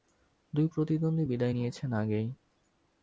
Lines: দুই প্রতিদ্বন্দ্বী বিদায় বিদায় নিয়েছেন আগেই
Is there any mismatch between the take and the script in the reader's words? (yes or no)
yes